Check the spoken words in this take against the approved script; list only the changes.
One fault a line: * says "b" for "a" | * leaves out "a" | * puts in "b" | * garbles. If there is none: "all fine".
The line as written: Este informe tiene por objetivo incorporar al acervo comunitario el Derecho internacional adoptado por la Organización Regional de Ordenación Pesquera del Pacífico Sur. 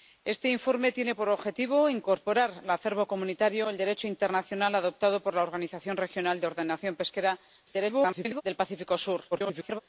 * garbles
* garbles